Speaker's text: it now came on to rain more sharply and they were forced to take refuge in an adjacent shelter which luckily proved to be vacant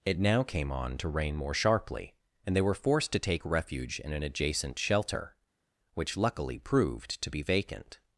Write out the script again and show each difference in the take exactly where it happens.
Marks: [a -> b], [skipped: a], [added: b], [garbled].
it now came on to rain more sharply and they were forced to take refuge in an adjacent shelter which luckily proved to be vacant